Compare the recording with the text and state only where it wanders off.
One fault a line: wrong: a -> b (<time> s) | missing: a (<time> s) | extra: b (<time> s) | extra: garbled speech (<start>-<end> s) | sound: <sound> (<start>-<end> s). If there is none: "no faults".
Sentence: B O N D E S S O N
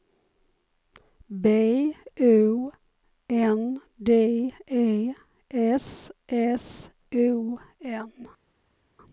no faults